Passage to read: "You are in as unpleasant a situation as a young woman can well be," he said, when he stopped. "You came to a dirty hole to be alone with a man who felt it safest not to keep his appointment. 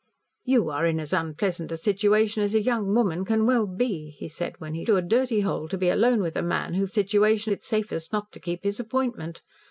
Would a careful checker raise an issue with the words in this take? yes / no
yes